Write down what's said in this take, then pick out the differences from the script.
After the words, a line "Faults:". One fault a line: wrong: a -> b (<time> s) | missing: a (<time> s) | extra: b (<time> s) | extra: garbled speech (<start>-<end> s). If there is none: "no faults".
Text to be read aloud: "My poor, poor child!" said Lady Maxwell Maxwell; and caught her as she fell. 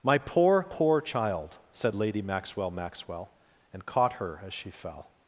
"My poor, poor child!" said Lady Maxwell Maxwell; and caught her as she fell.
Faults:
no faults